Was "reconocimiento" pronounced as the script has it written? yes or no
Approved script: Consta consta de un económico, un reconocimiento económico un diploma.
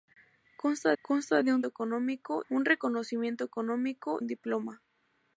yes